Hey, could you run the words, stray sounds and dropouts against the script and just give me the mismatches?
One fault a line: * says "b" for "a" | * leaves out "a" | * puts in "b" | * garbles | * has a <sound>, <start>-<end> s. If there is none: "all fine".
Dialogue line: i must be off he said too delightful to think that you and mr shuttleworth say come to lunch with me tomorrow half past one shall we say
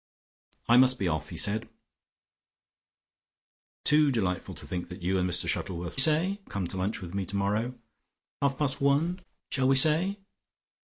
all fine